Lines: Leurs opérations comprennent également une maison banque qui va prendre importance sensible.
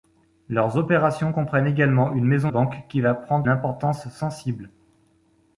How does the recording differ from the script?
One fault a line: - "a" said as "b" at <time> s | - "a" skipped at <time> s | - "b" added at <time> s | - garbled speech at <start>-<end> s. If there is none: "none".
none